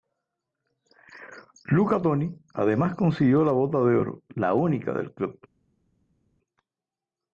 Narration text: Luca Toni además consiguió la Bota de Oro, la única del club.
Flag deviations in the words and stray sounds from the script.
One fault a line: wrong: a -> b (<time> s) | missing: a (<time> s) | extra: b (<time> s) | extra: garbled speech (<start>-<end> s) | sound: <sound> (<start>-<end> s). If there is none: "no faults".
no faults